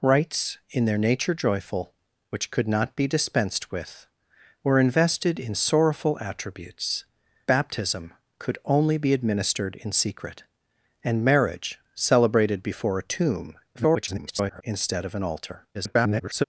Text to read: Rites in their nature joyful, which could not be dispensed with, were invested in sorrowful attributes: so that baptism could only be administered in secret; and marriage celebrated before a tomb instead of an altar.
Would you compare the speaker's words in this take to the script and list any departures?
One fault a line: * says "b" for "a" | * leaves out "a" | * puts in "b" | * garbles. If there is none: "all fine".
* leaves out "so that"
* garbles
* garbles